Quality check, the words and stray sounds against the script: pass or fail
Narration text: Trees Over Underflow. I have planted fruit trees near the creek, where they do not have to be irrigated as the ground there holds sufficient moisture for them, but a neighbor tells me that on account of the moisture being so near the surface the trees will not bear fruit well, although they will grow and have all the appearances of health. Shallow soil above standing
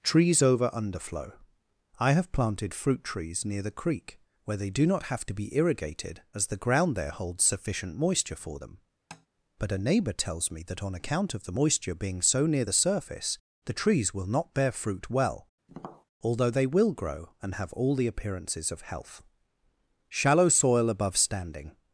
fail